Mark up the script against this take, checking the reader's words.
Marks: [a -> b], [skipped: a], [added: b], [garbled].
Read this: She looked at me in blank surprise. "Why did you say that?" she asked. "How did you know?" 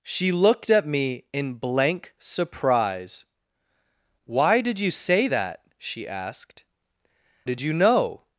She looked at me in blank surprise. "Why did you say that?" she asked. [skipped: "How] did you know?"